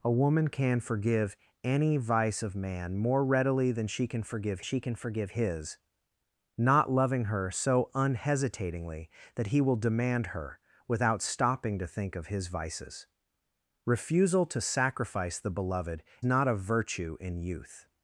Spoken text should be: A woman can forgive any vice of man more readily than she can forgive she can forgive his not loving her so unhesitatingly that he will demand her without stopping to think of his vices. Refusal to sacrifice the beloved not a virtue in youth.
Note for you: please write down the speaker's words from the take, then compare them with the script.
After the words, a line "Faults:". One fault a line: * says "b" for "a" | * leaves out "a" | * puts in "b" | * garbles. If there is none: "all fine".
A woman can forgive any vice of man more readily than she can forgive she can forgive his not loving her so unhesitatingly that he will demand her without stopping to think of his vices. Refusal to sacrifice the beloved not a virtue in youth.
Faults:
all fine